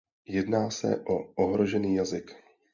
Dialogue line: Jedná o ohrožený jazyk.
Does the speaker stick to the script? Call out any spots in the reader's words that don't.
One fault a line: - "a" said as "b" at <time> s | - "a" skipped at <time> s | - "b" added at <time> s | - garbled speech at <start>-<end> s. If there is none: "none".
- "se" added at 0.7 s